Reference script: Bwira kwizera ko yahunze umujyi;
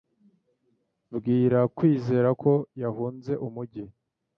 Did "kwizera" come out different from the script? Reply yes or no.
no